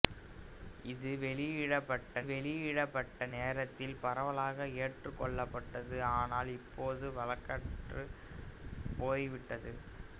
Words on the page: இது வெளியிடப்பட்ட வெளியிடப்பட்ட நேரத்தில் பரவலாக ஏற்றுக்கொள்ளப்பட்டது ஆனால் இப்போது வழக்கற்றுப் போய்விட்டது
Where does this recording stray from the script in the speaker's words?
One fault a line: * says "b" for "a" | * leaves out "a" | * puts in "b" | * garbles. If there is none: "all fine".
all fine